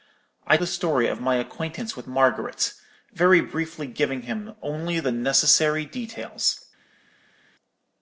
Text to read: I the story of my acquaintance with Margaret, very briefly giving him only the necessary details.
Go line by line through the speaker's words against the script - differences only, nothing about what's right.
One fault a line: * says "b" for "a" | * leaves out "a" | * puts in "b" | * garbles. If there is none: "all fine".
all fine